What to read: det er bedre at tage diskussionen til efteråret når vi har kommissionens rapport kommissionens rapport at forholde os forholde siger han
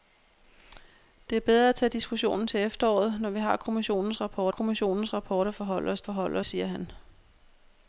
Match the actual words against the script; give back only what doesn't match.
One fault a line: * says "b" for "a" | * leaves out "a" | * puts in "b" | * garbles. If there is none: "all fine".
all fine